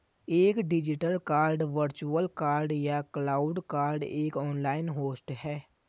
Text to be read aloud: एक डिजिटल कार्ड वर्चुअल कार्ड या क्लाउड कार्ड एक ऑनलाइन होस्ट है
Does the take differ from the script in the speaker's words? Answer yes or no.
no